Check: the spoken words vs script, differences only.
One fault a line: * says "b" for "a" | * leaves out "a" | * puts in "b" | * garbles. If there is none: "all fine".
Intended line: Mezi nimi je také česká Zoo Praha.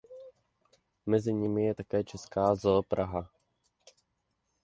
all fine